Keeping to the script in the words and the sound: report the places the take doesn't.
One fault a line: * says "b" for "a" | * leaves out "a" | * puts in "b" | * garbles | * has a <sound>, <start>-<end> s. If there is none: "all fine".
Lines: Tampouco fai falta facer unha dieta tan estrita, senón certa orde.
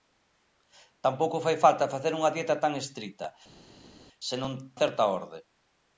all fine